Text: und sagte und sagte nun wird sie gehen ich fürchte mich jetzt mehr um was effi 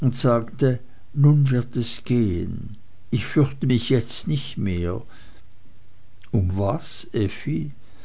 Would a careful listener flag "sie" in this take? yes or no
yes